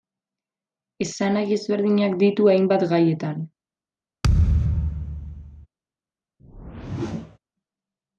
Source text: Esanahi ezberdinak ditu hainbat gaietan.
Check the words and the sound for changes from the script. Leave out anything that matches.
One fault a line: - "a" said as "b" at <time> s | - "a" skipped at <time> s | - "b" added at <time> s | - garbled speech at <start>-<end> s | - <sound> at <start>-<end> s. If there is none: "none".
- thud at 4.2-5.7 s
- whoosh at 6.4-7.4 s